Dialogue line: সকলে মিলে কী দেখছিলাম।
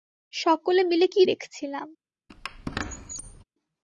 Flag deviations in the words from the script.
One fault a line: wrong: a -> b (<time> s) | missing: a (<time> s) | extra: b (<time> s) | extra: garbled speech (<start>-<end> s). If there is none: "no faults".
no faults